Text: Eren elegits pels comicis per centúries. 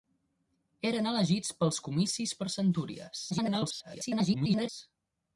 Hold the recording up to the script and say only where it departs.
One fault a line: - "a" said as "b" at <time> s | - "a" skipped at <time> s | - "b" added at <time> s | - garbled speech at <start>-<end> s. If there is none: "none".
- garbled speech at 3.3-4.7 s